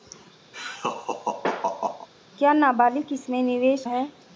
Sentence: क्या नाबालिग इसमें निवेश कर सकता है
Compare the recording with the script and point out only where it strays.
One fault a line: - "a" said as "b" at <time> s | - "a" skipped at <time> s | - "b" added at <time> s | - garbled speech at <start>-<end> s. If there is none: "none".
- "कर सकता" skipped at 3.8 s